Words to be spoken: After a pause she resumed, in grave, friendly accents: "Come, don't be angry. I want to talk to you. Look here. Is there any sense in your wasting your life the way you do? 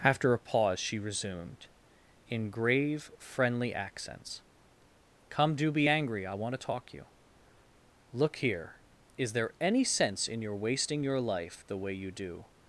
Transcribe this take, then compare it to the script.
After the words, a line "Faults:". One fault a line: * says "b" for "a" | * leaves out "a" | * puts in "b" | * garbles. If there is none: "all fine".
After a pause she resumed, in grave, friendly accents: "Come, do be angry. I want to talk you. Look here. Is there any sense in your wasting your life the way you do?
Faults:
* says "do" for "don't"
* leaves out "to"